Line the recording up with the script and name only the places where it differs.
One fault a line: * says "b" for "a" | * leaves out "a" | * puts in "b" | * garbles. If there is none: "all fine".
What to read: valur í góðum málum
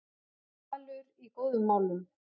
all fine